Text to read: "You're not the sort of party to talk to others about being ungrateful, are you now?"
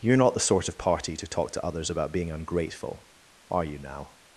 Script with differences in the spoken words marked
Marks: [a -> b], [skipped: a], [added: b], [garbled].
"You're not the sort of party to talk to others about being ungrateful, are you now?"